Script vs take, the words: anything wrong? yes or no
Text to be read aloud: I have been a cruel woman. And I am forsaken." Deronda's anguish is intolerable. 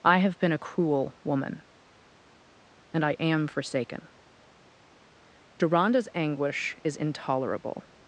no